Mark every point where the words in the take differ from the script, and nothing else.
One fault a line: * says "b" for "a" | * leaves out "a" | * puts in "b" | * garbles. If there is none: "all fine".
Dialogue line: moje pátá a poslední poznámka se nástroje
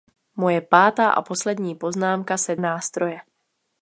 all fine